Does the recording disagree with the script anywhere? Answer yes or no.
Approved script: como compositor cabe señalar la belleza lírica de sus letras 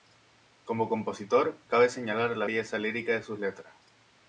no